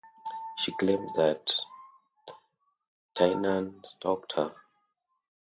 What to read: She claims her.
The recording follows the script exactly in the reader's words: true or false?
false